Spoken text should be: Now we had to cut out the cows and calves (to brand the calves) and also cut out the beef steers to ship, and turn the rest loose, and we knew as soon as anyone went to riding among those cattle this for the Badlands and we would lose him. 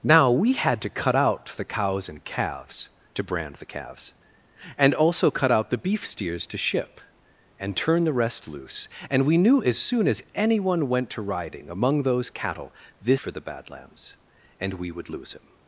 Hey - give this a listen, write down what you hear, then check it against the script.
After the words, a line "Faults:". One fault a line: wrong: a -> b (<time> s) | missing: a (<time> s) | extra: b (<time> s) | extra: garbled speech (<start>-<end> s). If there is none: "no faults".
Now we had to cut out the cows and calves (to brand the calves) and also cut out the beef steers to ship, and turn the rest loose, and we knew as soon as anyone went to riding among those cattle this for the Badlands and we would lose him.
Faults:
no faults